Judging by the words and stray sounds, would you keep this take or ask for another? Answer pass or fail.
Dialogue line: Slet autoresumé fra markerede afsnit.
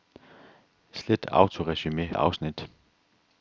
fail